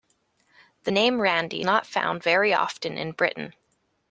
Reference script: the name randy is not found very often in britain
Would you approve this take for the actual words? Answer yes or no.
no